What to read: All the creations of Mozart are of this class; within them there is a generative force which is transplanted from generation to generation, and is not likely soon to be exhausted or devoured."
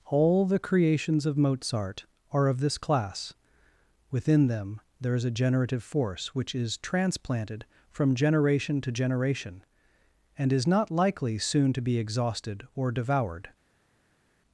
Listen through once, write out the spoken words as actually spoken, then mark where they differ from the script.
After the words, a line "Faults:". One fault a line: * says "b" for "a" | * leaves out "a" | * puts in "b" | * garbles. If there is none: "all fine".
All the creations of Mozart are of this class; within them there is a generative force which is transplanted from generation to generation, and is not likely soon to be exhausted or devoured."
Faults:
all fine